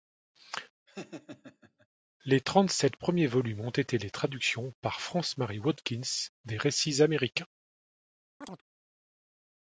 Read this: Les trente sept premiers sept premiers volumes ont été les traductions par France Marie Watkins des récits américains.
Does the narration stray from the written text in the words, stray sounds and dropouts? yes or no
yes